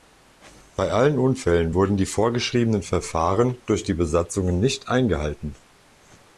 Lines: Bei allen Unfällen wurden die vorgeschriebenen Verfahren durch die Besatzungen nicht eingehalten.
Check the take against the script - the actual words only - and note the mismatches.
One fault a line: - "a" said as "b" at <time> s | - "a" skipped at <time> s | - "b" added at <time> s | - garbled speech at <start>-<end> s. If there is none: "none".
none